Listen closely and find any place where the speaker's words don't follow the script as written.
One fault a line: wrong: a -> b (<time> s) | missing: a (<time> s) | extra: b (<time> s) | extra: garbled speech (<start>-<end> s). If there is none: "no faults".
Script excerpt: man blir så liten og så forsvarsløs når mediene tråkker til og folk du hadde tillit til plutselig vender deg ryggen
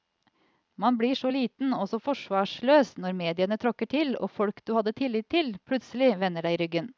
no faults